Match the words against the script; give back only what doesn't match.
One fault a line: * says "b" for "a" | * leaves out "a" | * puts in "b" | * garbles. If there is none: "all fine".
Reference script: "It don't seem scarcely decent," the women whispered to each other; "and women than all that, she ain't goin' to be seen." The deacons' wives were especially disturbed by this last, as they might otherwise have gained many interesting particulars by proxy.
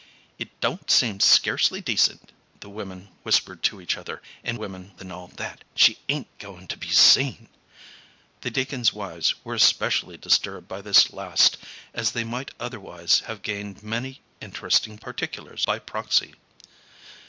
all fine